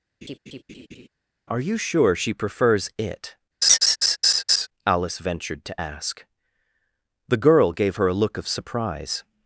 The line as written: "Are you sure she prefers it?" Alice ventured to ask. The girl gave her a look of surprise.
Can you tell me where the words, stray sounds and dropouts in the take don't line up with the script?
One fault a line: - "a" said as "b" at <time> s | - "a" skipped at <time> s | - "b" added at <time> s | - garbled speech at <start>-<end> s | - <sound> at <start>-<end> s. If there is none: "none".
- laugh at 0.2-1.1 s
- laugh at 3.6-4.7 s